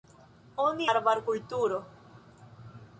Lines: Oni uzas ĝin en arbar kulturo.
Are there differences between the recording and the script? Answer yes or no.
yes